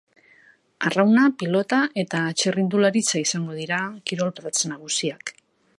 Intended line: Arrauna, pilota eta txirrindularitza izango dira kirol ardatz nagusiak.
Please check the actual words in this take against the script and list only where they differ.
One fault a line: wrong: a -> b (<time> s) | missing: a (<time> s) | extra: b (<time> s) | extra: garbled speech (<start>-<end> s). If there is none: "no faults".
no faults